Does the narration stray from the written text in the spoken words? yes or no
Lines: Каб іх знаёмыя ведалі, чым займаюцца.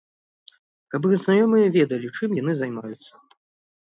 yes